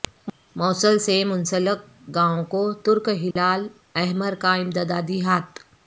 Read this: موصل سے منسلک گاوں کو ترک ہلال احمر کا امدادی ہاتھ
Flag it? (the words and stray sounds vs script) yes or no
yes